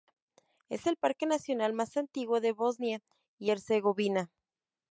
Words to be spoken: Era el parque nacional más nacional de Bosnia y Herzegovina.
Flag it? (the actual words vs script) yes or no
yes